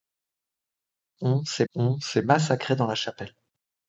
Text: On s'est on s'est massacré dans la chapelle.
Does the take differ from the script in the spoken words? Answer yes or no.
no